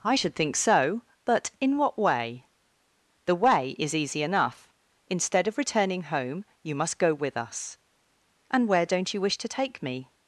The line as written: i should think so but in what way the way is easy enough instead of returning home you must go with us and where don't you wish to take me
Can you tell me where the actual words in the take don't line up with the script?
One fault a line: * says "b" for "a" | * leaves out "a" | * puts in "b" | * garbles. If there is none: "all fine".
all fine